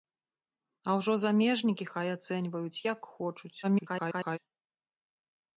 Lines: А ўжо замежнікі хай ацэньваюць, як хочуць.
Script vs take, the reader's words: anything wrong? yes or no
yes